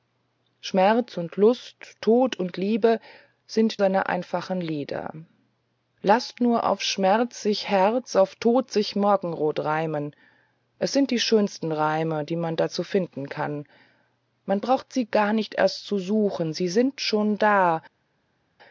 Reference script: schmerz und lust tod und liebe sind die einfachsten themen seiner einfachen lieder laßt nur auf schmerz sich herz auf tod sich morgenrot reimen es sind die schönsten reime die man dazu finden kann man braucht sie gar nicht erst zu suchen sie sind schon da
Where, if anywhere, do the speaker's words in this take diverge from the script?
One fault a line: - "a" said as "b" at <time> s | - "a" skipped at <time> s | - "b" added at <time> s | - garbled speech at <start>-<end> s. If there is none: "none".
- "die einfachsten themen" skipped at 3.8 s